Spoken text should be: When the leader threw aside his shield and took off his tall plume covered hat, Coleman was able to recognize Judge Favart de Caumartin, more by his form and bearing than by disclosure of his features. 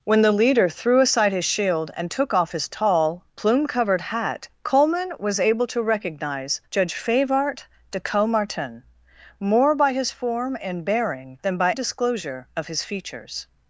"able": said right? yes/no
yes